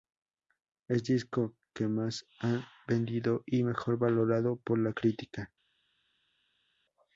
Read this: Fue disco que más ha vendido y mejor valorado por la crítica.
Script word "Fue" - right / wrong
wrong